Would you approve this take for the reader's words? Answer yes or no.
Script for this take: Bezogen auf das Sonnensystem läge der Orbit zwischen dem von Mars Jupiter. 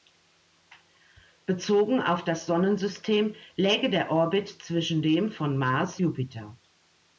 yes